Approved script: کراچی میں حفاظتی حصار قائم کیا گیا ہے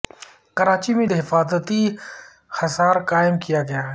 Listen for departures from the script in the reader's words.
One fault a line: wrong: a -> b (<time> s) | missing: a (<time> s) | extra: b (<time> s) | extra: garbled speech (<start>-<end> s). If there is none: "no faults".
no faults